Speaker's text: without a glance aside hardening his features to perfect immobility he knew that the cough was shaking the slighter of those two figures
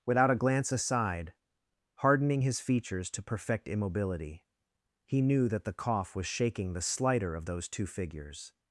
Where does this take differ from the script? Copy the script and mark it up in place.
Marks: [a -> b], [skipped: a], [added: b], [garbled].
without a glance aside hardening his features to perfect immobility he knew that the cough was shaking the slighter of those two figures